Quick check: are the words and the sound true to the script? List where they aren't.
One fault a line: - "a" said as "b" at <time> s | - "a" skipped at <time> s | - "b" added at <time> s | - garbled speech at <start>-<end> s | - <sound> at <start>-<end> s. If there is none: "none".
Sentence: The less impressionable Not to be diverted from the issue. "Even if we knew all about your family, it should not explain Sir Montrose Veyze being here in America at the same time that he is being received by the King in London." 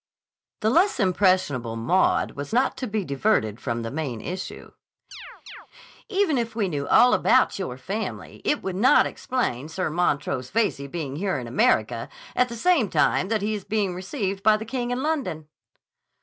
- "Maud was" added at 1.8 s
- "main" added at 3.9 s
- chirp at 5.1-5.7 s
- "should" said as "would" at 8.6 s